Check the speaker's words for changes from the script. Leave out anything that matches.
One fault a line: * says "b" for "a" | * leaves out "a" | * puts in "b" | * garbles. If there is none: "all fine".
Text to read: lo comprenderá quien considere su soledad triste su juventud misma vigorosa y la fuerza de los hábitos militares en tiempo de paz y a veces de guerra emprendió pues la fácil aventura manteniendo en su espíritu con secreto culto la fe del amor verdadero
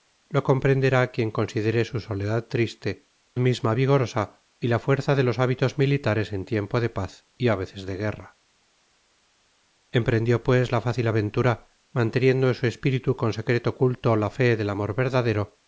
* leaves out "su juventud"